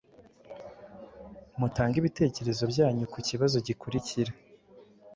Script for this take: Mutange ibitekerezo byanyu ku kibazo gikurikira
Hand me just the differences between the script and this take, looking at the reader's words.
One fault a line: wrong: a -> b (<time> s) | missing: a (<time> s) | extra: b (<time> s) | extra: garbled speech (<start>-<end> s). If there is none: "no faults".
no faults